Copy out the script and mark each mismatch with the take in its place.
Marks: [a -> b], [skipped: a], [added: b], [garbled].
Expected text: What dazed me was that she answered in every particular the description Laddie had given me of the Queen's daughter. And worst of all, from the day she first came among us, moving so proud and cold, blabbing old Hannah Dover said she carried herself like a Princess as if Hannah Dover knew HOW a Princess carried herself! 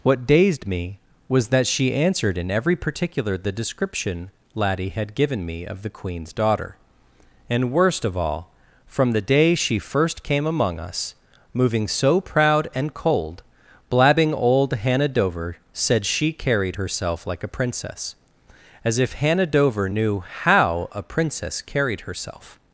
What dazed me was that she answered in every particular the description Laddie had given me of the Queen's daughter. And worst of all, from the day she first came among us, moving so proud and cold, blabbing old Hannah Dover said she carried herself like a Princess as if Hannah Dover knew HOW a Princess carried herself!